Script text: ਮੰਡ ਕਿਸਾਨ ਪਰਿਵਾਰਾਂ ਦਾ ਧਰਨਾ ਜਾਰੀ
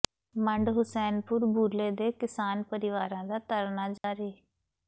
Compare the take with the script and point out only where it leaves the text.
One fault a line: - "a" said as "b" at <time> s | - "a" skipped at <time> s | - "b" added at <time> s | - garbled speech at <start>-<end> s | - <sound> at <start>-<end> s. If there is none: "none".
- "ਹੁਸੈਨਪੁਰ ਬੂਲੇ ਦੇ" added at 0.7 s
- dropout at 4.0-4.0 s